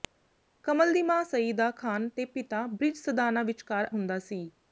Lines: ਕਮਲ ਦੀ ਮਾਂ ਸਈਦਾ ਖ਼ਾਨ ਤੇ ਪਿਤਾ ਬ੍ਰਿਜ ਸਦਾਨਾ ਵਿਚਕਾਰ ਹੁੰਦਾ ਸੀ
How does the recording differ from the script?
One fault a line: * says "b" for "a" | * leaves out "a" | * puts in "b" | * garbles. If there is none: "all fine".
all fine